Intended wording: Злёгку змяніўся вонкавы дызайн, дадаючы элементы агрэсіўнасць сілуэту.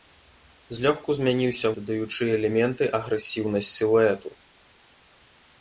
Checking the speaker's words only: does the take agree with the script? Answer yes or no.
no